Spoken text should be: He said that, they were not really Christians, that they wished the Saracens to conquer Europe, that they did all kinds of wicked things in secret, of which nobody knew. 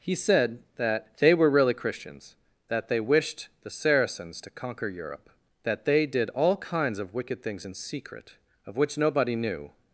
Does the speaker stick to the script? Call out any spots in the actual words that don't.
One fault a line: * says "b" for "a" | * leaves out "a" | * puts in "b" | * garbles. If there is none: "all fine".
* leaves out "not"